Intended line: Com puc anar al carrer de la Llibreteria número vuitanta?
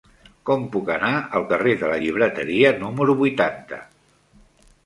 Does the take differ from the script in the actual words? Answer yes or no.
no